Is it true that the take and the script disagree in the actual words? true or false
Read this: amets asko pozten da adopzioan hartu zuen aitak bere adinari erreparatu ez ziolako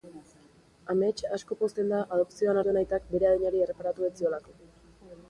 true